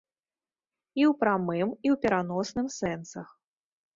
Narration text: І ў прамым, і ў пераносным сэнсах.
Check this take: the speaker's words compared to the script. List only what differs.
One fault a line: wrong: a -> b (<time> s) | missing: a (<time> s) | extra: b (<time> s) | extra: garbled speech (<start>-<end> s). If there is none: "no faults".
no faults